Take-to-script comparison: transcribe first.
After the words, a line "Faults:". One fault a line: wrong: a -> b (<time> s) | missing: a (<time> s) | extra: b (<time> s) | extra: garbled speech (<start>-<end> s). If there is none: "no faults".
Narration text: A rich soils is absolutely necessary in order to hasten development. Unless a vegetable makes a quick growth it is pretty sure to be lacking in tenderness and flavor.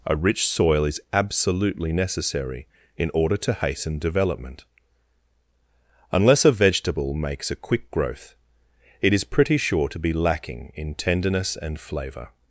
A rich soil is absolutely necessary in order to hasten development. Unless a vegetable makes a quick growth it is pretty sure to be lacking in tenderness and flavor.
Faults:
wrong: soils -> soil (0.5 s)